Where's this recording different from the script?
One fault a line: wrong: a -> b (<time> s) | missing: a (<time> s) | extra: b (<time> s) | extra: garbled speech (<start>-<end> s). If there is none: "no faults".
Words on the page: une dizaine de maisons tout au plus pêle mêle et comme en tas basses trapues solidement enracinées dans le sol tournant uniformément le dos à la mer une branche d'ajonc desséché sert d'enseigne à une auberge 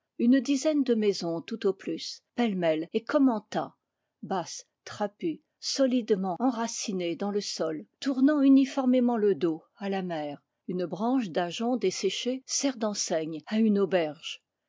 no faults